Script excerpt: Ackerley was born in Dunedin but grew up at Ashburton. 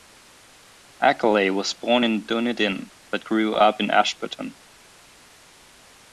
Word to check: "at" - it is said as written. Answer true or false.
false